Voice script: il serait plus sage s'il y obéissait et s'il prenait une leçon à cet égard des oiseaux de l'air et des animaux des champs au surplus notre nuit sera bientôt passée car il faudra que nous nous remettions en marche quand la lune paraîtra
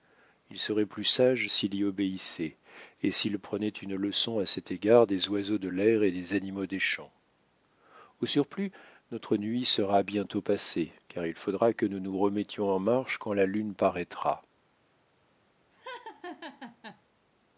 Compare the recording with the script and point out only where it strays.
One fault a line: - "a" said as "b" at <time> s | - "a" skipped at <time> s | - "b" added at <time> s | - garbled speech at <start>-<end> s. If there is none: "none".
none